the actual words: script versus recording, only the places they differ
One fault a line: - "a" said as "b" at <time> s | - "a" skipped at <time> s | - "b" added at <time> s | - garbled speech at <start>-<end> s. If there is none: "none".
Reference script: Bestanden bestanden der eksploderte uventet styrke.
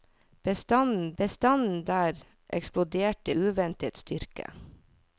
none